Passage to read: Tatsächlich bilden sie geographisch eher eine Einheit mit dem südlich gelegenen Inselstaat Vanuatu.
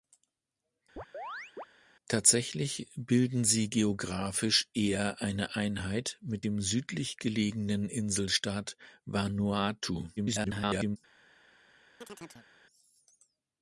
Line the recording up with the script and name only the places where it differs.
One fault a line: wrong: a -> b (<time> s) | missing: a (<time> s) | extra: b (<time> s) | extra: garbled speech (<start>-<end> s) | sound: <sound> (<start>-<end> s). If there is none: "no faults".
sound: chirp (1.0-1.7 s)
extra: garbled speech (10.2-11.0 s)
sound: chirp (12.0-12.5 s)